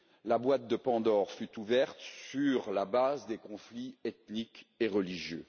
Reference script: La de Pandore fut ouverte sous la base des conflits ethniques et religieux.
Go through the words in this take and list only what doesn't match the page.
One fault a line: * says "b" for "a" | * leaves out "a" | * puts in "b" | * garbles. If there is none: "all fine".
* puts in "boîte"
* says "sur" for "sous"